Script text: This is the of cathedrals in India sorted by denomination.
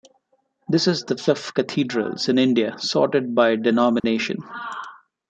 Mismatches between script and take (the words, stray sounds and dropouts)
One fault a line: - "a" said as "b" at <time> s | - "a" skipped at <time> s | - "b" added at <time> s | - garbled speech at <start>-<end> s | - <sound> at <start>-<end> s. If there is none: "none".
- dropout at 4.0-4.0 s